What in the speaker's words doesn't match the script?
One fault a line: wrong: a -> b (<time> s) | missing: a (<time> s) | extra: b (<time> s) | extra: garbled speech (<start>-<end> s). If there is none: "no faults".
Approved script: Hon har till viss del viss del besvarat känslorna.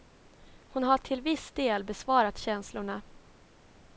missing: viss del (1.8 s)